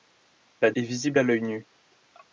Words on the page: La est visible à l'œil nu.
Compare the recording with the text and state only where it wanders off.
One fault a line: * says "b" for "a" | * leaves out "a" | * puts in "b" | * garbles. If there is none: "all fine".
all fine